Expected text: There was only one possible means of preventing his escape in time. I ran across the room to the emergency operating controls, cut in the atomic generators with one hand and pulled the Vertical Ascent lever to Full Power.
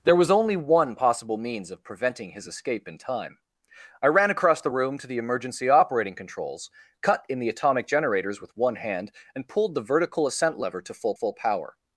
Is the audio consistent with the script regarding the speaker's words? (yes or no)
no